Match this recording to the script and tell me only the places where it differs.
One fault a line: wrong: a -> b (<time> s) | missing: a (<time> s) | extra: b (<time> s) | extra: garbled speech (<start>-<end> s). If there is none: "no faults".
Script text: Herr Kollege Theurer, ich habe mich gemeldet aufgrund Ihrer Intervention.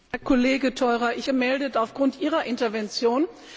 missing: habe mich (1.3 s)